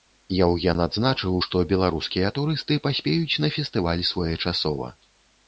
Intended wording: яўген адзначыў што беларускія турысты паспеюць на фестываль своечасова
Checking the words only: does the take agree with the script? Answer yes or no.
yes